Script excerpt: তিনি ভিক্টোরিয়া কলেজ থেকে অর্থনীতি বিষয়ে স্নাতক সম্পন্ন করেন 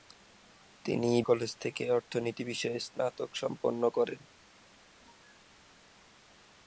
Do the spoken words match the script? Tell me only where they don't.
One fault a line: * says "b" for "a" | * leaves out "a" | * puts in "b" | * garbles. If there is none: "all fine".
* leaves out "ভিক্টোরিয়া"